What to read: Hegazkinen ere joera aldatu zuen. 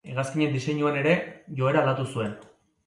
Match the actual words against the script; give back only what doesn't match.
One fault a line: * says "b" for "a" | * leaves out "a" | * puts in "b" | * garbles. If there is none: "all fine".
* puts in "diseinuan"